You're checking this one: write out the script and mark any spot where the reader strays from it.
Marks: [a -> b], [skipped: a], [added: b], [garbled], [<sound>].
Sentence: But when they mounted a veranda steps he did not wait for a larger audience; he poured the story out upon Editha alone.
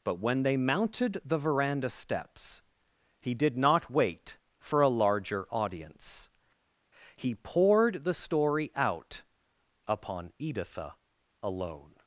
But when they mounted [a -> the] veranda steps he did not wait for a larger audience; he poured the story out upon Editha alone.